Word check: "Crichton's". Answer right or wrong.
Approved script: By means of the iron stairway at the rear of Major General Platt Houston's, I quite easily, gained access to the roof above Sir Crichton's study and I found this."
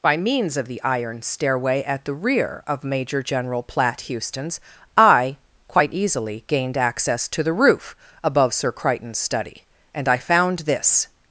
right